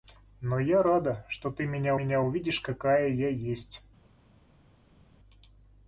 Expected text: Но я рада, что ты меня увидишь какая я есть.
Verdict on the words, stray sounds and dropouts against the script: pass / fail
fail